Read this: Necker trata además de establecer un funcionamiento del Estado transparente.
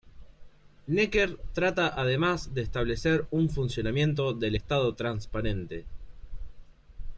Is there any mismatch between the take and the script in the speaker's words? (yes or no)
no